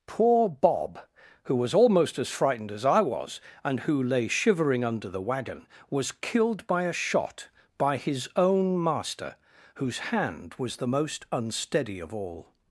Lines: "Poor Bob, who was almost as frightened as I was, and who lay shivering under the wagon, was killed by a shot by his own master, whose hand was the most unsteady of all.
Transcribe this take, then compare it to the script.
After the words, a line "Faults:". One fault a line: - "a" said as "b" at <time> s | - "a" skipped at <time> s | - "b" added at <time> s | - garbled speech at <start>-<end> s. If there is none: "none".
"Poor Bob, who was almost as frightened as I was, and who lay shivering under the wagon, was killed by a shot by his own master, whose hand was the most unsteady of all.
Faults:
none